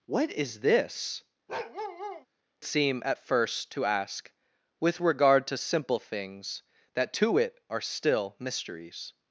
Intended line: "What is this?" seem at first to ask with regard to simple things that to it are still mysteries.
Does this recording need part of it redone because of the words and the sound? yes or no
yes